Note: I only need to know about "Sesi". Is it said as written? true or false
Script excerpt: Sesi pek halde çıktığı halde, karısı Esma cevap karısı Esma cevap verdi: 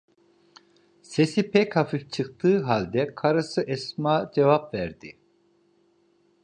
true